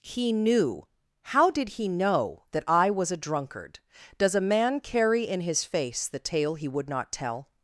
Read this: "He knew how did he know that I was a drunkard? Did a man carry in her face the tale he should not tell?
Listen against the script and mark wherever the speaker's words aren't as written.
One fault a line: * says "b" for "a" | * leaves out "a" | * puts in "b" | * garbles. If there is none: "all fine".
* says "Does" for "Did"
* says "his" for "her"
* says "would" for "should"